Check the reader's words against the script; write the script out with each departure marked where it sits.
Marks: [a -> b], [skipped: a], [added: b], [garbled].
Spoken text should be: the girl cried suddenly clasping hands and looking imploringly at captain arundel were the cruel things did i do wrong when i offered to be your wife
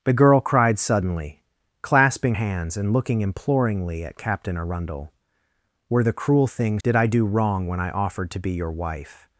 the girl cried suddenly clasping hands and looking imploringly at captain arundel were the cruel things did i do wrong when i offered to be your wife